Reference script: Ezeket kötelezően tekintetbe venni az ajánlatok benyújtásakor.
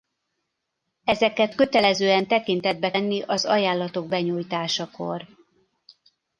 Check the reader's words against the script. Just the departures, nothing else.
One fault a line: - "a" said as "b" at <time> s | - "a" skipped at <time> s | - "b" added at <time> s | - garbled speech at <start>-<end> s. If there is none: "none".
none